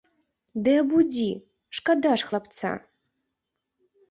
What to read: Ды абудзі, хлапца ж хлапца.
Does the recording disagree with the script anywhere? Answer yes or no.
yes